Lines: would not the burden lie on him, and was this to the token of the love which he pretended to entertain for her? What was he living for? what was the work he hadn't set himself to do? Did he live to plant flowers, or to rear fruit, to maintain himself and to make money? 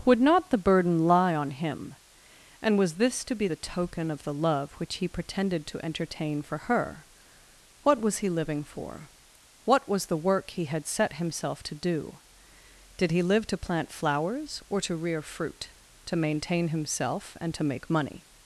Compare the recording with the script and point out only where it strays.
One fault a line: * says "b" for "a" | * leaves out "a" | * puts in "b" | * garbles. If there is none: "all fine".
* puts in "be"
* says "had" for "hadn't"